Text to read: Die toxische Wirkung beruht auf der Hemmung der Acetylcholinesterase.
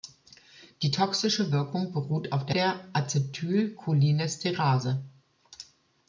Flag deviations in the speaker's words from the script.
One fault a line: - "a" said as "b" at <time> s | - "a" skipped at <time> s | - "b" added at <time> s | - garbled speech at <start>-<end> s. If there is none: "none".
- "Hemmung" skipped at 2.6 s